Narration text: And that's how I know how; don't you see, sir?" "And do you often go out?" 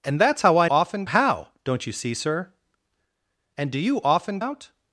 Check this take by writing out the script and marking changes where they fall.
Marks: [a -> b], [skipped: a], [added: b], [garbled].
And that's how I [know -> often] how; don't you see, sir?" "And do you often [skipped: go] out?"